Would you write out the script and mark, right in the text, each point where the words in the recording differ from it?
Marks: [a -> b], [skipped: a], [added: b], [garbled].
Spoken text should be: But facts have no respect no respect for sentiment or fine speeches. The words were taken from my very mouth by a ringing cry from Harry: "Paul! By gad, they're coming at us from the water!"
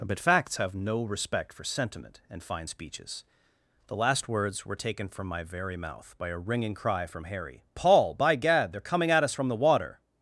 But facts have no respect [skipped: no respect] for sentiment [or -> and] fine speeches. The [added: last] words were taken from my very mouth by a ringing cry from Harry: "Paul! By gad, they're coming at us from the water!"